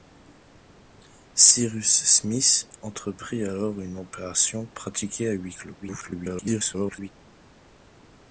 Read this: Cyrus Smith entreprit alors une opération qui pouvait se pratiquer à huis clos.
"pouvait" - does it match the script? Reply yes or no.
no